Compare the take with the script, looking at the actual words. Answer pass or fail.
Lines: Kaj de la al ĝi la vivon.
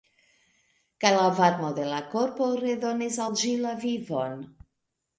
fail